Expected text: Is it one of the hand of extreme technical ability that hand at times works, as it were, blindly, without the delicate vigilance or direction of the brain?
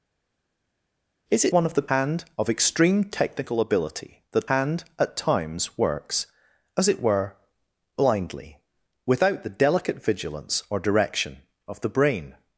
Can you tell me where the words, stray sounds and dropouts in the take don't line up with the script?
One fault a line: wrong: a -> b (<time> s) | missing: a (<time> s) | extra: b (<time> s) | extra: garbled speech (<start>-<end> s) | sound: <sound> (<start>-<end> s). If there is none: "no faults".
no faults